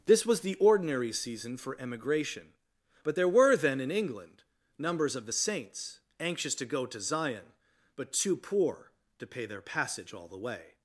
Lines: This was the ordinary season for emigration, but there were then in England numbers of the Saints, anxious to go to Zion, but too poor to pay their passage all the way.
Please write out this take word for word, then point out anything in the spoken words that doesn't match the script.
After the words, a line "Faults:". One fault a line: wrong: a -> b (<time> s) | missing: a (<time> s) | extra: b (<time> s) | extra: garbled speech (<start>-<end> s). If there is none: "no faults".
This was the ordinary season for emigration, but there were then in England numbers of the Saints, anxious to go to Zion, but too poor to pay their passage all the way.
Faults:
no faults